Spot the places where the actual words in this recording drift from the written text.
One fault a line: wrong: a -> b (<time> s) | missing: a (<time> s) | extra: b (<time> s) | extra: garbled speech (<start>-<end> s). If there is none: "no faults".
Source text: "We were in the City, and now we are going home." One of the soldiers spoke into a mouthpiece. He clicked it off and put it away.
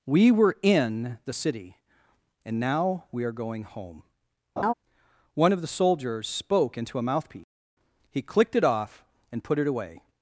no faults